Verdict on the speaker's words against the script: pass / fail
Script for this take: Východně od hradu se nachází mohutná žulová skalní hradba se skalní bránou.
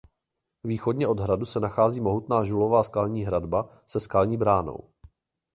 pass